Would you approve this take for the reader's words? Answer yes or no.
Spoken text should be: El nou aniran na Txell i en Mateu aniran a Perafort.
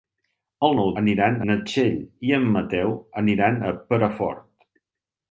yes